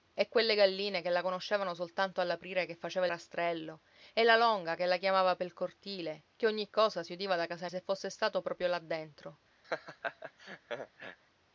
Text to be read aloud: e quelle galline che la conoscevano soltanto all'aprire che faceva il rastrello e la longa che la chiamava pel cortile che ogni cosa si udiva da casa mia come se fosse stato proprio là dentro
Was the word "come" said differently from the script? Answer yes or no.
yes